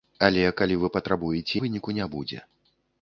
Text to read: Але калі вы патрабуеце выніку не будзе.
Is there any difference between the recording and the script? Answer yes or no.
no